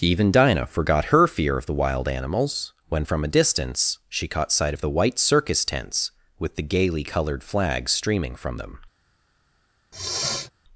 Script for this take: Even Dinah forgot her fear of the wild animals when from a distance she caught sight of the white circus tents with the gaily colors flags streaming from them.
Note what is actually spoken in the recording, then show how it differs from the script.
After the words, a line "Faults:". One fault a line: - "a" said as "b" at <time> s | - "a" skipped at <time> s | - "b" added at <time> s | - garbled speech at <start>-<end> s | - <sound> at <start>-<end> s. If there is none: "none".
Even Dinah forgot her fear of the wild animals when from a distance she caught sight of the white circus tents with the gaily colored flags streaming from them.
Faults:
- "colors" said as "colored" at 7.0 s
- sniff at 9.9-10.5 s